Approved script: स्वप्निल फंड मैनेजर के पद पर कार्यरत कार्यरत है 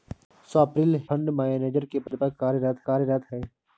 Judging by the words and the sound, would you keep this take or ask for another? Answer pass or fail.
fail